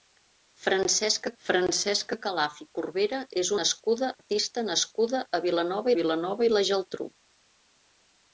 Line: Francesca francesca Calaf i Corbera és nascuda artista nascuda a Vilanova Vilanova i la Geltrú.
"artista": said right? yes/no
yes